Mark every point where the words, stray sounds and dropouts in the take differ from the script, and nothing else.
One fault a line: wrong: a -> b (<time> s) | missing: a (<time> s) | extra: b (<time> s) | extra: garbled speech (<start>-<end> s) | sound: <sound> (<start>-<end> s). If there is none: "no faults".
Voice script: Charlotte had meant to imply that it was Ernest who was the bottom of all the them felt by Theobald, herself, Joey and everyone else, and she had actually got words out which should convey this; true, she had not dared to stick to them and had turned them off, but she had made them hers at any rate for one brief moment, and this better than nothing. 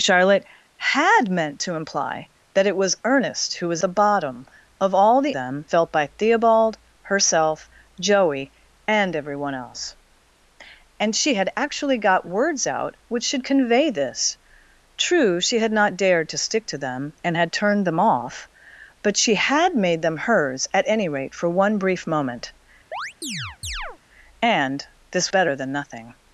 sound: chirp (22.9-24.0 s)